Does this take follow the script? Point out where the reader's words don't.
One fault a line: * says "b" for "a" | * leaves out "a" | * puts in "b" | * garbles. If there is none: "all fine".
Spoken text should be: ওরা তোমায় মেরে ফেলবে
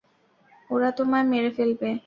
all fine